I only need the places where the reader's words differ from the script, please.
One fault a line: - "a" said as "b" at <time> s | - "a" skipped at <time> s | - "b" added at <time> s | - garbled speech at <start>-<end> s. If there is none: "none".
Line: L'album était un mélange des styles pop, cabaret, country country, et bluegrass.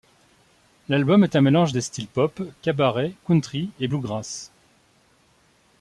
- "était" said as "est" at 1.2 s
- "country" skipped at 3.7 s